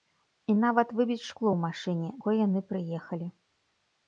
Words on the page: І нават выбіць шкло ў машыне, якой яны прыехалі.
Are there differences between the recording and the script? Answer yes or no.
no